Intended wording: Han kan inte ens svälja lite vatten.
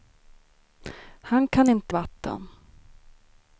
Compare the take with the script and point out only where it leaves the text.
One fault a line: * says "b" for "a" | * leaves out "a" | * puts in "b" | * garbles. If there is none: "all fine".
* leaves out "ens svälja lite"